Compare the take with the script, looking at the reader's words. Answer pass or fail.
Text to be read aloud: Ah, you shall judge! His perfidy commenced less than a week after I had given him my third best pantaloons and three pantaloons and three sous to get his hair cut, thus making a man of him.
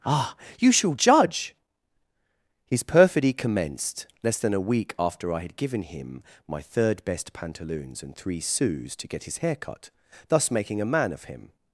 fail